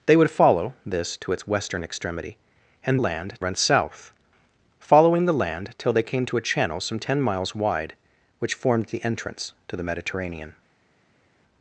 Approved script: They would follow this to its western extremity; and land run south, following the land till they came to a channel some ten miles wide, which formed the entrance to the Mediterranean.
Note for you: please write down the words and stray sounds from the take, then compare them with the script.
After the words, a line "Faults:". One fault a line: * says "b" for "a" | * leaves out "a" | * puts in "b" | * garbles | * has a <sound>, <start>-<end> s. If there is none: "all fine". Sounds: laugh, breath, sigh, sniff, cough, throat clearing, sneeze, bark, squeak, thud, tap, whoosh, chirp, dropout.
They would follow this to its western extremity; and land run south, following the land till they came to a channel some ten miles wide, which formed the entrance to the Mediterranean.
Faults:
all fine